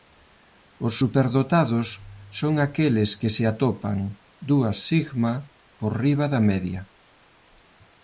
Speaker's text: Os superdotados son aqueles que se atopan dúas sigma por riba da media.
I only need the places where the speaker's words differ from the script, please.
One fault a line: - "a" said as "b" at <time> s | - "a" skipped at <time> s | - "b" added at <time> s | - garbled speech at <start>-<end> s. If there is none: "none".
none